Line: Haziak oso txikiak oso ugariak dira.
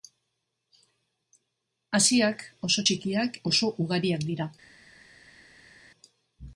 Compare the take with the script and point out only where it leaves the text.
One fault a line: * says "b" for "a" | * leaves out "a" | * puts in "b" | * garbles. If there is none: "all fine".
all fine